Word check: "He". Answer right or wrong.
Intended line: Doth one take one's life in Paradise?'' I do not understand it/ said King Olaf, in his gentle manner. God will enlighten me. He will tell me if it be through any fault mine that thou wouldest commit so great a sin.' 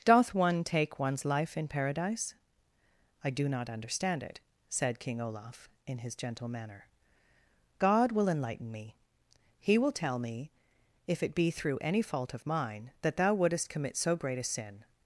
right